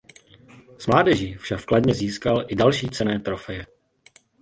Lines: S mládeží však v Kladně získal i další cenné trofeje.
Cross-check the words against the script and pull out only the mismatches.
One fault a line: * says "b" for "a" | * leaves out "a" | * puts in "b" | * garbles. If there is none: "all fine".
all fine